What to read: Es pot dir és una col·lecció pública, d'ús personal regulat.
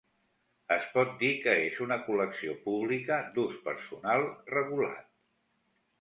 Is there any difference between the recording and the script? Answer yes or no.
yes